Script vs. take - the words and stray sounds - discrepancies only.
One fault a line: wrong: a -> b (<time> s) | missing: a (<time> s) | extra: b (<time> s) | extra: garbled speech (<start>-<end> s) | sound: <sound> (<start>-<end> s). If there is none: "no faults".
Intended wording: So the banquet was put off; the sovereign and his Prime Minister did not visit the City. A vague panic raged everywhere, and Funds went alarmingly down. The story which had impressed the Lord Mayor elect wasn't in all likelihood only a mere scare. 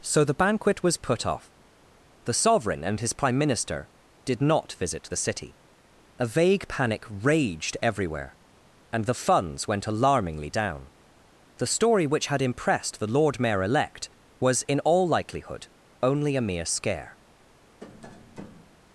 extra: the (9.1 s)
wrong: wasn't -> was (14.4 s)
sound: tap (17.8-18.8 s)